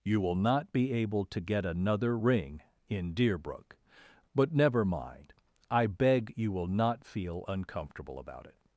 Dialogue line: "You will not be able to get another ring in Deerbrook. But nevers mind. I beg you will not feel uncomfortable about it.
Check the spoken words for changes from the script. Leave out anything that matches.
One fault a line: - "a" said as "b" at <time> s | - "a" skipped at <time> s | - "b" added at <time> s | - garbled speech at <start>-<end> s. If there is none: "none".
- "nevers" said as "never" at 4.5 s